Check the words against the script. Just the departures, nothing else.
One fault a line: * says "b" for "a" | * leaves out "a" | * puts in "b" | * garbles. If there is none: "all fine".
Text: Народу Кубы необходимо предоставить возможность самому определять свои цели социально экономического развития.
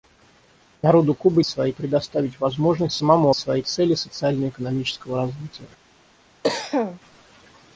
* says "свои" for "необходимо"
* leaves out "определять"